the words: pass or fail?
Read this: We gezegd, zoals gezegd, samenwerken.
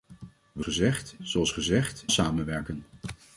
pass